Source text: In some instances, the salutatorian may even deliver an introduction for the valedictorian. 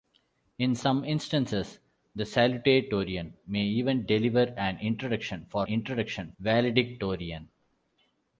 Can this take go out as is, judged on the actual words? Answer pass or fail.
fail